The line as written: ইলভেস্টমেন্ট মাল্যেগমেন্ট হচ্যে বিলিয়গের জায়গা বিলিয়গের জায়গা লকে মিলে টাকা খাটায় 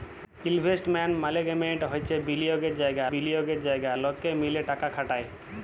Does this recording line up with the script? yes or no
yes